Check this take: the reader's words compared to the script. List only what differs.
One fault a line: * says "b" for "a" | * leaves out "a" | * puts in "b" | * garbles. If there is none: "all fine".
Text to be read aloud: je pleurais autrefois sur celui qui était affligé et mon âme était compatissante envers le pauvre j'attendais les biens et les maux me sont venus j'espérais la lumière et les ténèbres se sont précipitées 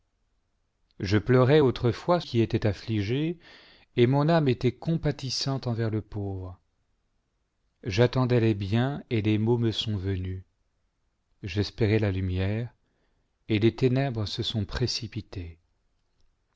* leaves out "sur celui"